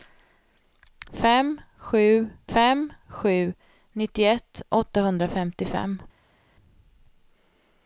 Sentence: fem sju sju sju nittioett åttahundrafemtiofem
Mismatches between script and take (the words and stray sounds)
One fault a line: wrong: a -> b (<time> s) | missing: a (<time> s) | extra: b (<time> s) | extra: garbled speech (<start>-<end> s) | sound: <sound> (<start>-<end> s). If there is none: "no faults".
wrong: sju -> fem (2.5 s)